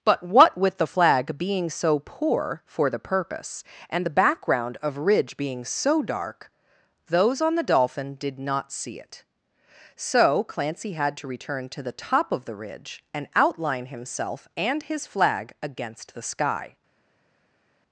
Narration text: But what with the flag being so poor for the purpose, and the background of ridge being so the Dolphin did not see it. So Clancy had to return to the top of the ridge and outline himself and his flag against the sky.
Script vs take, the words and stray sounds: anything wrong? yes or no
yes